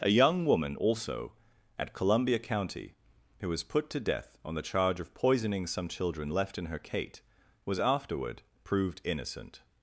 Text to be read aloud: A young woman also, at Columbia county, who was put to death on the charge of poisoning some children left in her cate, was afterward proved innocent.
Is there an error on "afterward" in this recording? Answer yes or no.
no